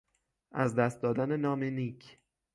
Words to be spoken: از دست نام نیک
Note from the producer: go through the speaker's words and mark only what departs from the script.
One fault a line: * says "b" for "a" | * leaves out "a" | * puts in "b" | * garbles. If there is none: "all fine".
* puts in "دادن"